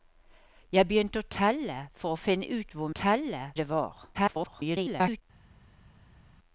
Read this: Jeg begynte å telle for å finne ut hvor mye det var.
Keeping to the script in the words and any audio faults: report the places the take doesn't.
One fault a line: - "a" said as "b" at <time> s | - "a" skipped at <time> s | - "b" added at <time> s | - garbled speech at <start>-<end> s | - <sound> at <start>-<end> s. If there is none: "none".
- "mye" said as "telle" at 3.0 s
- garbled speech at 4.1-5.2 s